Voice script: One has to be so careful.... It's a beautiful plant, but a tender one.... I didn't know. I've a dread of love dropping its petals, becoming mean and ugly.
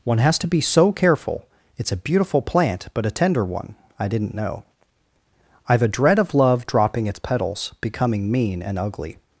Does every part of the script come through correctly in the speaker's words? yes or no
yes